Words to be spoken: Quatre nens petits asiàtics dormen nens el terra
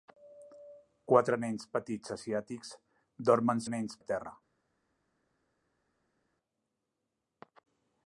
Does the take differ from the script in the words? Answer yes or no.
no